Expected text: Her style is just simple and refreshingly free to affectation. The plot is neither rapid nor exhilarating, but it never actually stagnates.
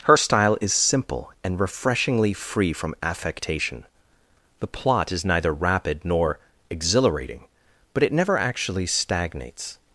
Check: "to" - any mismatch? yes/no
yes